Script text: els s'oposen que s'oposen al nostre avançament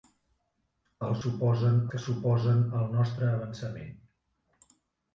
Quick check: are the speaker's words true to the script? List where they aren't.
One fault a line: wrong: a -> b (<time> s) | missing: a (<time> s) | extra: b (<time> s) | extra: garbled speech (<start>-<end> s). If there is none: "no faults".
no faults